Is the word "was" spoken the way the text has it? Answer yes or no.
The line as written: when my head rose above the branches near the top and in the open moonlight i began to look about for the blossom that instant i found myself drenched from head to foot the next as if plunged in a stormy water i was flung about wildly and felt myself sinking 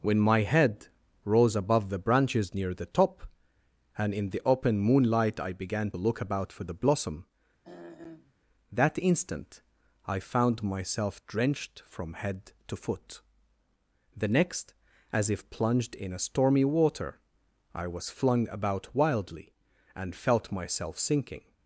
yes